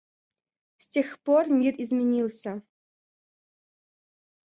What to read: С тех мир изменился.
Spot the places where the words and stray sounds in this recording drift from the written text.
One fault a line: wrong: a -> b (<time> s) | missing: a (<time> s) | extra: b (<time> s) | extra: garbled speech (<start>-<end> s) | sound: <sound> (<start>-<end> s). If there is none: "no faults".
extra: пор (1.2 s)